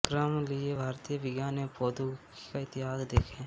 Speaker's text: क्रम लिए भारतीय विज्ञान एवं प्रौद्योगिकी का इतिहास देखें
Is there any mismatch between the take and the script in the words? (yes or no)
no